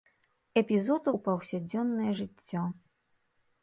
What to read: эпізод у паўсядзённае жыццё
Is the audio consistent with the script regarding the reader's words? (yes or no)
yes